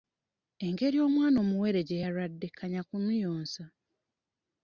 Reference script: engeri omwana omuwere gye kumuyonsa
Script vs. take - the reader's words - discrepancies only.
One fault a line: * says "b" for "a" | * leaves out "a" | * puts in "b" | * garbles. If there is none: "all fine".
* puts in "yalwadde kanya"